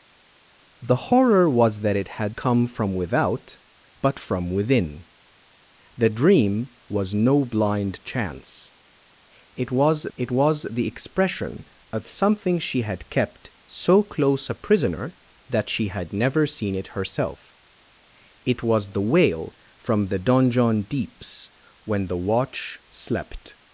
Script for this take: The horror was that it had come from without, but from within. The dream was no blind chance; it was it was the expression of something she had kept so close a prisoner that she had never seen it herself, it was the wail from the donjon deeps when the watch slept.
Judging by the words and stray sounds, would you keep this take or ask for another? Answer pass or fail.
pass